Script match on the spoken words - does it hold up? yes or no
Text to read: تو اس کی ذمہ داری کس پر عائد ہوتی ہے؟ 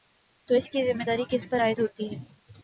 yes